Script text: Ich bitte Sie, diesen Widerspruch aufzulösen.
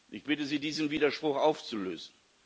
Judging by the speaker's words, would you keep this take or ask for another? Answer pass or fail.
pass